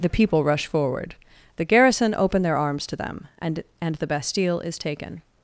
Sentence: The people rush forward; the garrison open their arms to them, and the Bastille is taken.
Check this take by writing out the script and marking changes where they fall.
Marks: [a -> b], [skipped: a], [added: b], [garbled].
The people rush forward; the garrison open their arms to them, and [added: and] the Bastille is taken.